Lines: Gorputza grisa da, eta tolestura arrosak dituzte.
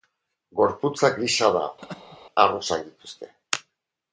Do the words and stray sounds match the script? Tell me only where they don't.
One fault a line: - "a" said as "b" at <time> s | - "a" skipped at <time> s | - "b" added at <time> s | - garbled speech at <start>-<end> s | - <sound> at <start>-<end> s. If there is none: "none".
- "eta tolestura" skipped at 1.6 s
- laugh at 1.8-2.2 s